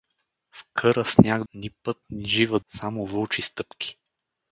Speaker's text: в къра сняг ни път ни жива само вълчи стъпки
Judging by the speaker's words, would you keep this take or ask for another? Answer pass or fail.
pass